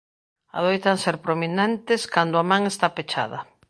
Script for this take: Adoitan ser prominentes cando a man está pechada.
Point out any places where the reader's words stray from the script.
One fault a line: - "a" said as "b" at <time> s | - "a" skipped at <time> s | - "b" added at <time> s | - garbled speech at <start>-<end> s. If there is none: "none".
none